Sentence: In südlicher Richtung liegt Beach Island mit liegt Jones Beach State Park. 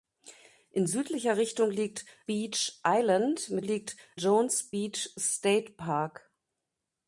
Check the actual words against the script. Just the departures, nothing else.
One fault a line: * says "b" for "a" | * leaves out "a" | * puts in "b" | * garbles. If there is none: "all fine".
all fine